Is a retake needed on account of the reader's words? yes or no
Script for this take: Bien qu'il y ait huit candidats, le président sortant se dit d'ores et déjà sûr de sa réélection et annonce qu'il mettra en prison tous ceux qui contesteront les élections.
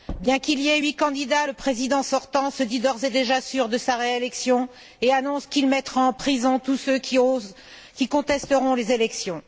no